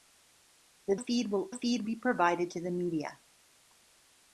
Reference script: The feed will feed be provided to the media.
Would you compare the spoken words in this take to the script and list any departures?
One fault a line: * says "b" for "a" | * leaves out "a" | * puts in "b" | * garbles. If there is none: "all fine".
all fine